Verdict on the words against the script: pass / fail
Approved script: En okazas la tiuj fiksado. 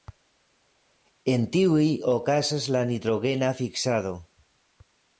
fail